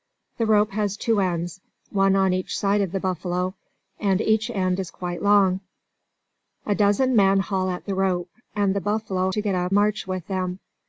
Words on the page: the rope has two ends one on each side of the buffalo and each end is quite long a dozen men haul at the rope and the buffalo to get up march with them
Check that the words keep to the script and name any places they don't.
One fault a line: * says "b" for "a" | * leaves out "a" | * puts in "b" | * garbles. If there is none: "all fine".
all fine